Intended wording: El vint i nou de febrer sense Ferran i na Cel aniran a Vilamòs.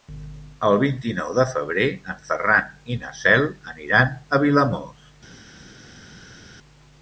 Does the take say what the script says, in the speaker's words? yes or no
no